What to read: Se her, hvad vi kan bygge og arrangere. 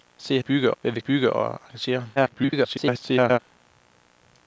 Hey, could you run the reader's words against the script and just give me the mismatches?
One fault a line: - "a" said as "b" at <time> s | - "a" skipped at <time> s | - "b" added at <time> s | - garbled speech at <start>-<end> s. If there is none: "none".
- "her" said as "bygge" at 0.4 s
- "kan" skipped at 1.0 s
- garbled speech at 2.2-3.4 s